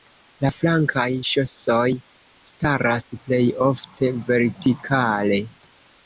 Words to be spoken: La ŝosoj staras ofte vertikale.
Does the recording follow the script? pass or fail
fail